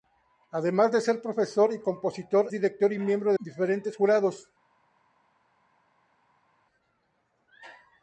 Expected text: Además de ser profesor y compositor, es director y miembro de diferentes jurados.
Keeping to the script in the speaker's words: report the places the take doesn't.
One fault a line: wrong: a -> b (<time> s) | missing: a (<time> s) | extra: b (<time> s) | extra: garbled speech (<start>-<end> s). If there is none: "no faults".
missing: es (2.5 s)
missing: de (3.3 s)